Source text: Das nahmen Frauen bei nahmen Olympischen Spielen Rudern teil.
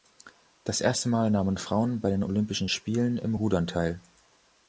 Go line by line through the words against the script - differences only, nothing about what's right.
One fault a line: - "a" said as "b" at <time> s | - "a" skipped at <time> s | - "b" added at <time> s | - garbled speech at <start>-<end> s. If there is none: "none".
- "erste Mal" added at 0.8 s
- "nahmen" said as "den" at 2.1 s
- "im" added at 3.2 s